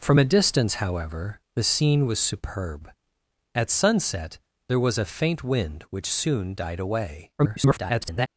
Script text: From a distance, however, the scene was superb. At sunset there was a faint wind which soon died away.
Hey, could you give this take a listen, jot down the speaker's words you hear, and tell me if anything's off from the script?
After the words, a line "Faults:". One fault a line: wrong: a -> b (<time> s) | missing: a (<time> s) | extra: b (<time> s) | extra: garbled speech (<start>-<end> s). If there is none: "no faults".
From a distance, however, the scene was superb. At sunset there was a faint wind which soon died away. [garbled]
Faults:
extra: garbled speech (7.4-8.3 s)